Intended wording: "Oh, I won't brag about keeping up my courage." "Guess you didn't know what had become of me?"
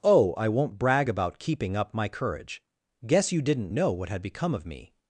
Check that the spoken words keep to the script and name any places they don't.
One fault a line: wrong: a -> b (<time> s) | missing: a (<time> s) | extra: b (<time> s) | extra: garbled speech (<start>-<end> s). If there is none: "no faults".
no faults